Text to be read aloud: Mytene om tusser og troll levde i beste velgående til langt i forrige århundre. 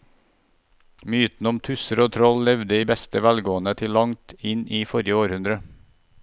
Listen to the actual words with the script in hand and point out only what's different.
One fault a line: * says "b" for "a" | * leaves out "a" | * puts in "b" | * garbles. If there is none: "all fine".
* puts in "inn"